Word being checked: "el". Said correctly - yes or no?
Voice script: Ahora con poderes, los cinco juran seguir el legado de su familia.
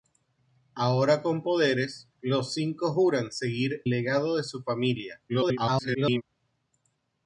no